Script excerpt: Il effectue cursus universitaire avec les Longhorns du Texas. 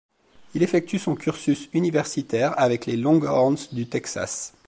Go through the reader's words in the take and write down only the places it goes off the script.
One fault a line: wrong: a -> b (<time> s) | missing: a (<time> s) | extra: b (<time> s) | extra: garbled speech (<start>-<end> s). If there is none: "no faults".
extra: son (1.0 s)